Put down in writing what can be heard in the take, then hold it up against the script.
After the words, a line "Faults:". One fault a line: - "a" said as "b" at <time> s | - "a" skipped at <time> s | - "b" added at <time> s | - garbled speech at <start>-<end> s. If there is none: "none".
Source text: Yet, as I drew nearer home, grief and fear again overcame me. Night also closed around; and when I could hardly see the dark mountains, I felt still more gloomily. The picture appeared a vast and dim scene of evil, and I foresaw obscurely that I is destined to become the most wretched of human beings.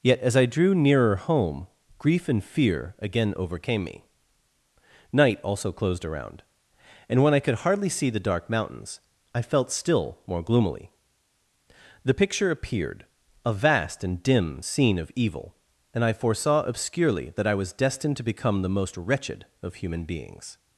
Yet, as I drew nearer home, grief and fear again overcame me. Night also closed around; and when I could hardly see the dark mountains, I felt still more gloomily. The picture appeared a vast and dim scene of evil, and I foresaw obscurely that I was destined to become the most wretched of human beings.
Faults:
- "is" said as "was" at 17.5 s